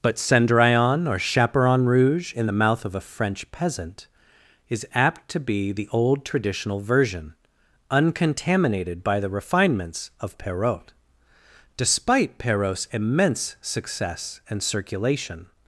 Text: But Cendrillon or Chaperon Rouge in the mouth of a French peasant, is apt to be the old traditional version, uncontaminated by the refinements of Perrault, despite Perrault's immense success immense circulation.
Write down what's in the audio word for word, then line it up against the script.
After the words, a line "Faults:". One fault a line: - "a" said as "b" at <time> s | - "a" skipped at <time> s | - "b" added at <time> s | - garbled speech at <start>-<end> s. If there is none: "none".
But Cendrillon or Chaperon Rouge in the mouth of a French peasant, is apt to be the old traditional version, uncontaminated by the refinements of Perrault, despite Perrault's immense success and circulation.
Faults:
- "immense" said as "and" at 14.5 s